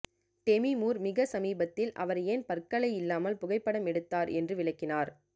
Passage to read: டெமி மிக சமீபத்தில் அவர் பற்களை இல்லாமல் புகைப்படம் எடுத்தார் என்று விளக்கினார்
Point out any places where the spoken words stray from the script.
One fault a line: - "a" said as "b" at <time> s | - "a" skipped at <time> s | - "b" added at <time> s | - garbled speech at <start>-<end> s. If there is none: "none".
- "மூர்" added at 0.8 s
- "ஏன்" added at 2.2 s